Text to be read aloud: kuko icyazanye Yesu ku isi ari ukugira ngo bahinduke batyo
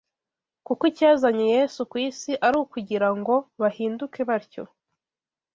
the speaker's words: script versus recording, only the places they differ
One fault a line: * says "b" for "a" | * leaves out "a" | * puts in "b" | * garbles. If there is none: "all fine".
all fine